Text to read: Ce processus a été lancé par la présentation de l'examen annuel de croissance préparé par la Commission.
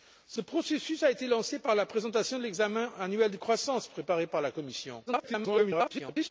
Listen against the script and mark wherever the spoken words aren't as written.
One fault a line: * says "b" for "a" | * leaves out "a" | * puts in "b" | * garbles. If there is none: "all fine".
* garbles